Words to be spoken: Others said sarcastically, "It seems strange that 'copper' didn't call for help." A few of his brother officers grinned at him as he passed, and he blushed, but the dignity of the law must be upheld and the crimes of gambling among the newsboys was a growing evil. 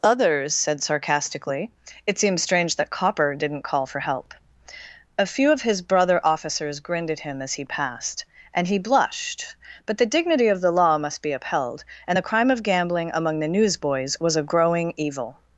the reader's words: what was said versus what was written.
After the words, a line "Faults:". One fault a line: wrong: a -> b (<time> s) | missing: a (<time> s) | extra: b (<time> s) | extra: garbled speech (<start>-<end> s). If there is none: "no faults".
Others said sarcastically, "It seems strange that 'copper' didn't call for help." A few of his brother officers grinned at him as he passed, and he blushed, but the dignity of the law must be upheld and the crime of gambling among the newsboys was a growing evil.
Faults:
wrong: crimes -> crime (12.3 s)